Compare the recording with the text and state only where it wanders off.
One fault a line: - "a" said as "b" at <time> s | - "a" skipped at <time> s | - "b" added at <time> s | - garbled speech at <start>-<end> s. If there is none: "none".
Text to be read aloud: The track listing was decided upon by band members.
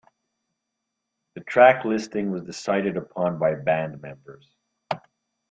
none